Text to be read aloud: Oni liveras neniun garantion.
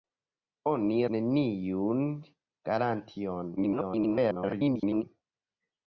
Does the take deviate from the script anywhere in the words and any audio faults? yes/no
yes